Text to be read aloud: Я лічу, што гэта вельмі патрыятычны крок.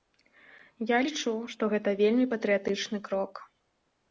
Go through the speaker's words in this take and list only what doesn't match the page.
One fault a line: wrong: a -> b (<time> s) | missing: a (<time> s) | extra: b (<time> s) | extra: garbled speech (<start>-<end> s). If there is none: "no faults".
no faults